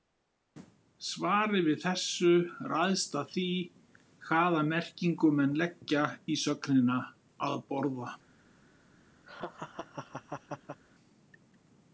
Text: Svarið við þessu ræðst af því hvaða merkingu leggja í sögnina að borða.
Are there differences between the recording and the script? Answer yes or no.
yes